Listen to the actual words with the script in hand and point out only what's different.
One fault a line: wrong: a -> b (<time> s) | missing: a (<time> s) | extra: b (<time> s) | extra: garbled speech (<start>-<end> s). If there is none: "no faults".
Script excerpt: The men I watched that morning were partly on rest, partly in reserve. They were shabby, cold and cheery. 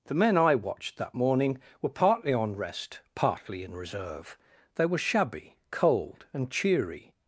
no faults